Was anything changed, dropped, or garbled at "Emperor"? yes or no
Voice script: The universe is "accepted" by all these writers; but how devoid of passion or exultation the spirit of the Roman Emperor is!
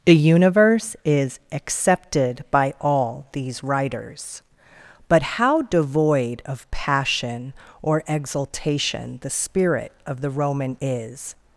yes